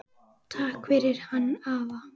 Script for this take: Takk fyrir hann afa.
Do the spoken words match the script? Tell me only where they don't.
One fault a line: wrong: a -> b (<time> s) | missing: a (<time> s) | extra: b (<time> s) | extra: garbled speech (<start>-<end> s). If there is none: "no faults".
no faults